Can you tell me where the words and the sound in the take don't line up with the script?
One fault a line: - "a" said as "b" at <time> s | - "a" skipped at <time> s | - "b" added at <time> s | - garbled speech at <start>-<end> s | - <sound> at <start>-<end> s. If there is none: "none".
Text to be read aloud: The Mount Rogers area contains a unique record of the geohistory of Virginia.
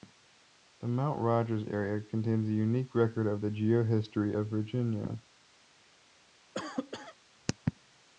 - cough at 6.5-7.2 s